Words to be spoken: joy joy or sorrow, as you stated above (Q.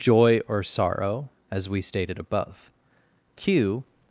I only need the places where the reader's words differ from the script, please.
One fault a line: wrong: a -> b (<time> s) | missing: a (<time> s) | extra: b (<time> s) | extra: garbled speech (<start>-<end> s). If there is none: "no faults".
missing: joy (0.4 s)
wrong: you -> we (1.7 s)